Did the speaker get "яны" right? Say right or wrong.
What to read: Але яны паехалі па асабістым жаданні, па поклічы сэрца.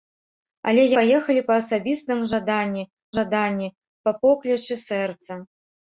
wrong